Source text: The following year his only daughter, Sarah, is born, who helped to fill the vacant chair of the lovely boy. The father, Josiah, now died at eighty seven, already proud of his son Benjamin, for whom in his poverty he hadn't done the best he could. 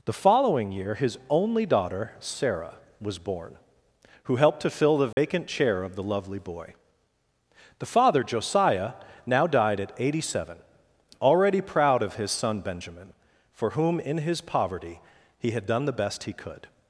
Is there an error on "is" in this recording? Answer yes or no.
yes